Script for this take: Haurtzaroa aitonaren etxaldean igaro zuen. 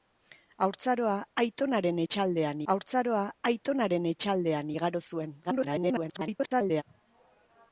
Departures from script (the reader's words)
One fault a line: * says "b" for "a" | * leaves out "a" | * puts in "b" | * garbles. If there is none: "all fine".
* puts in "haurtzaroa aitonaren etxaldean"
* garbles